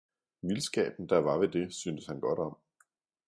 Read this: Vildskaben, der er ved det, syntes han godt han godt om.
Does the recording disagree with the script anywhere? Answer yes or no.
yes